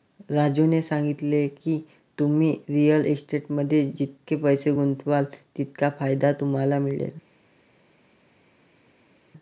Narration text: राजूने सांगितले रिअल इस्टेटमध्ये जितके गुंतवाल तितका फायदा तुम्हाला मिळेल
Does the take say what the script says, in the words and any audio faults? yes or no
no